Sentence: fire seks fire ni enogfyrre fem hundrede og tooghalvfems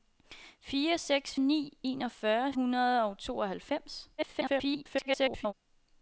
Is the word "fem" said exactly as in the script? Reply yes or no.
no